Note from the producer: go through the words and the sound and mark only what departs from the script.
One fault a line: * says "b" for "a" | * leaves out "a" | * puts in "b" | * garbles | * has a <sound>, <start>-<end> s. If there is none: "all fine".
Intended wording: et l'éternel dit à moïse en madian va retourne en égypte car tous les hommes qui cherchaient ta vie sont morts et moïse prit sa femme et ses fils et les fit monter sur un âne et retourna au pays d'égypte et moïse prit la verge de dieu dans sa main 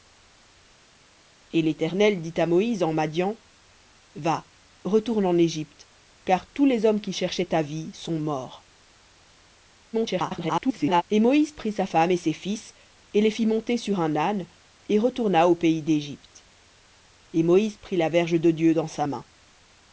* garbles